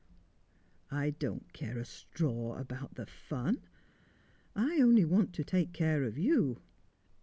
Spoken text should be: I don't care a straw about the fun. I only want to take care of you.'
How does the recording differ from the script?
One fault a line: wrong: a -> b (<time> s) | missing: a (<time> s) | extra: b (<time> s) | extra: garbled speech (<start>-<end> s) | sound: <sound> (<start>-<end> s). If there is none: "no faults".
no faults